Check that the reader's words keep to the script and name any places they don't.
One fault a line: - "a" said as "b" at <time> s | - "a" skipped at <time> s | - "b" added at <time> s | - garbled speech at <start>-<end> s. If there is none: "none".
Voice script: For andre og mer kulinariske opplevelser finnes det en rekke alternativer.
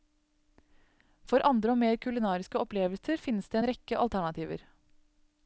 none